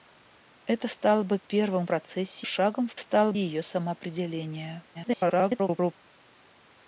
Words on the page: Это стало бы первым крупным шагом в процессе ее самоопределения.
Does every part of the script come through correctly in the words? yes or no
no